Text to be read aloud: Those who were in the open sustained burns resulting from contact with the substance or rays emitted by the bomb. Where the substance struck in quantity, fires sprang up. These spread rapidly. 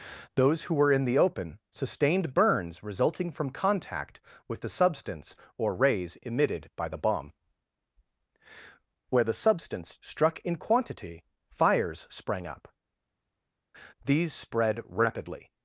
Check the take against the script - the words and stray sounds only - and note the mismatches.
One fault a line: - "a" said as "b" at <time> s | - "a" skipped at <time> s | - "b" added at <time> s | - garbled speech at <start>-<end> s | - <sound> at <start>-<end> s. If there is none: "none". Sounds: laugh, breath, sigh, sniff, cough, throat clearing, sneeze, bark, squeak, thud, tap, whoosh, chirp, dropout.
none